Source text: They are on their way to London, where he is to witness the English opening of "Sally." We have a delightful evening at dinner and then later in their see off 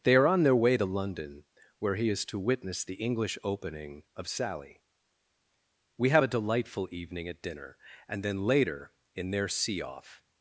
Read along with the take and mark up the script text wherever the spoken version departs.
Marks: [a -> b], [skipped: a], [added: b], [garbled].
They are on their way to London, where he is to witness the English opening of "Sally." We have a delightful evening at dinner and then later in their see off